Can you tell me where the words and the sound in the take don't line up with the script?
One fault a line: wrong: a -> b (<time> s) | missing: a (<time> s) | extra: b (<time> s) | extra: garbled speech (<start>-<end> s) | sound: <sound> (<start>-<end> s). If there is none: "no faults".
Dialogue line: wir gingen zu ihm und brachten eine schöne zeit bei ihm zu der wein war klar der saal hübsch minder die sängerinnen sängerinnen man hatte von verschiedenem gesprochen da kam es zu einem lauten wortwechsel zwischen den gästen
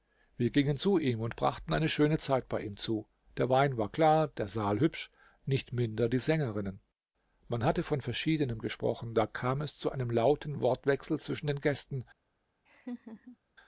extra: nicht (5.5 s)
missing: sängerinnen (6.8 s)
sound: laugh (12.7-13.4 s)